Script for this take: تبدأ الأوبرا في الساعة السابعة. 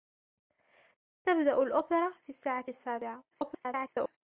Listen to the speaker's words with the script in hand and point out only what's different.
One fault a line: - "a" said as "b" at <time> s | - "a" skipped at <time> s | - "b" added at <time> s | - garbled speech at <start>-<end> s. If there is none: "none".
- garbled speech at 3.3-4.2 s